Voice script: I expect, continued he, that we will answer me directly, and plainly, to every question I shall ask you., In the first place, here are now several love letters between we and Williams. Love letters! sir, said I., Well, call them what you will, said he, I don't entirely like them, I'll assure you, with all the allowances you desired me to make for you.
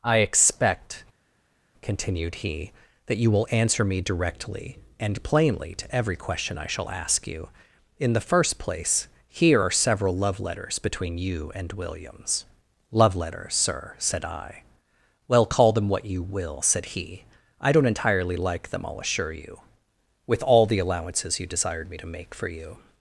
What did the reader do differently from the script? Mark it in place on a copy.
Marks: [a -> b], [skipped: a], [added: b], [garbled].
I expect, continued he, that [we -> you] will answer me directly, and plainly, to every question I shall ask you., In the first place, here are [skipped: now] several love letters between [we -> you] and Williams. Love letters! sir, said I., Well, call them what you will, said he, I don't entirely like them, I'll assure you, with all the allowances you desired me to make for you.